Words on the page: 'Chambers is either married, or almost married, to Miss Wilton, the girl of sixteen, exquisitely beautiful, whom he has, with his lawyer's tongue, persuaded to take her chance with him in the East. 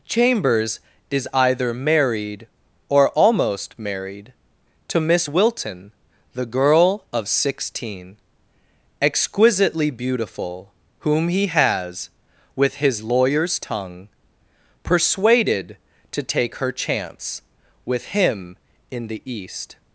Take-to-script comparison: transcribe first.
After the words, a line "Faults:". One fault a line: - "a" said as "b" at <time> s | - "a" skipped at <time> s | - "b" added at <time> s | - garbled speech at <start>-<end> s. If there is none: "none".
'Chambers is either married, or almost married, to Miss Wilton, the girl of sixteen, exquisitely beautiful, whom he has, with his lawyer's tongue, persuaded to take her chance with him in the East.
Faults:
none